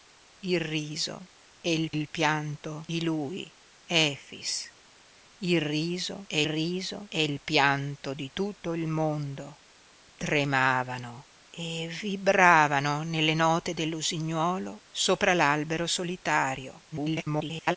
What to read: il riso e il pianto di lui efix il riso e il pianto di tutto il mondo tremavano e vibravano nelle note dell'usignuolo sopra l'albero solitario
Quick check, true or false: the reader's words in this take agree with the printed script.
false